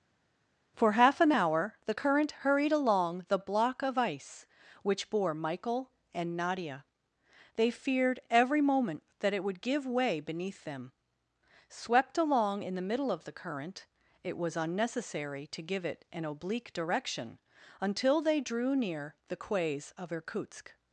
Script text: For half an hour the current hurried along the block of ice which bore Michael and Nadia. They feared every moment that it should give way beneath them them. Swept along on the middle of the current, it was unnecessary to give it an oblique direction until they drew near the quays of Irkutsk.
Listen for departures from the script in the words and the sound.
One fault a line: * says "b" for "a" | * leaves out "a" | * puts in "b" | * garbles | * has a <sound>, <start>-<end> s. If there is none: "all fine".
* says "would" for "should"
* leaves out "them"
* says "in" for "on"